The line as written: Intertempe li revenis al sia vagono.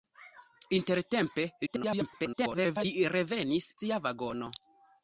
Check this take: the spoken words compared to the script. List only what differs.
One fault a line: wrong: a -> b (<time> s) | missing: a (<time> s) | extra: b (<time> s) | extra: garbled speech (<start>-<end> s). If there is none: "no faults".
extra: garbled speech (1.7-2.9 s)
missing: al (3.7 s)